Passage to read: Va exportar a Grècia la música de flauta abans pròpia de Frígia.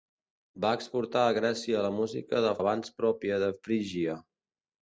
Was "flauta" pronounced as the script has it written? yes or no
no